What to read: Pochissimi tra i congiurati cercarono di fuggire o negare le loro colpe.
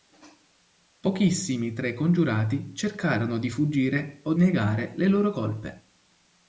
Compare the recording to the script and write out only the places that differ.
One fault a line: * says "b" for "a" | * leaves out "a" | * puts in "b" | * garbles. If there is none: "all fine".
all fine